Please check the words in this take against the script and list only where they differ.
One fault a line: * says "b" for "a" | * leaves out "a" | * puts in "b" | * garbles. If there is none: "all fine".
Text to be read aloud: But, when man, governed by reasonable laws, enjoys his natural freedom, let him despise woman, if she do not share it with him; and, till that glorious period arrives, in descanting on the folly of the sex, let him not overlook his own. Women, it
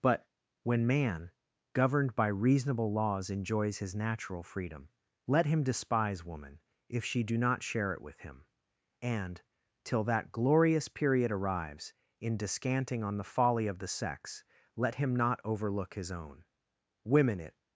all fine